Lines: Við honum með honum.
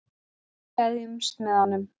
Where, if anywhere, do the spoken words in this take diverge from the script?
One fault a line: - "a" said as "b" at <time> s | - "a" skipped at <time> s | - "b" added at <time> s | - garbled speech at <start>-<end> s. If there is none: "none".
- "honum" said as "gleðjumst" at 0.8 s